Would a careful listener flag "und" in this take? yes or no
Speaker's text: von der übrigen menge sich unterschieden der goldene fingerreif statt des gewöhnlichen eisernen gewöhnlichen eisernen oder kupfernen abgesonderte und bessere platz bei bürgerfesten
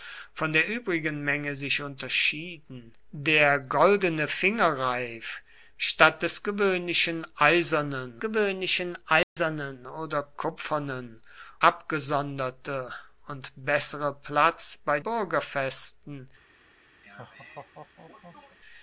no